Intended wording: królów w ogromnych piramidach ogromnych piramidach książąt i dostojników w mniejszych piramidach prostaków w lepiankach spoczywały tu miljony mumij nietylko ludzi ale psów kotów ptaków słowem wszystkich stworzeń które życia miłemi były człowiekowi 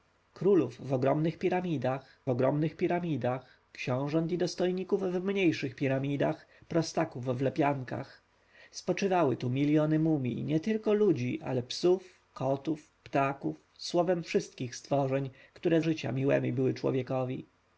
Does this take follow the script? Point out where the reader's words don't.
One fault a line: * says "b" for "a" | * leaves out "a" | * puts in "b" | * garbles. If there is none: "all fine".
all fine